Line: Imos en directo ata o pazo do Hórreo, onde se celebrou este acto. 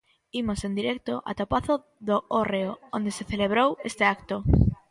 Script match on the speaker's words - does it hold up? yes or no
yes